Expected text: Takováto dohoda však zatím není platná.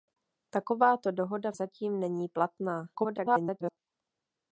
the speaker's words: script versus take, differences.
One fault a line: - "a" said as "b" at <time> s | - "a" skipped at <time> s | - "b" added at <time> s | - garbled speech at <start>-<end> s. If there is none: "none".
- "však" skipped at 1.5 s
- garbled speech at 2.9-3.8 s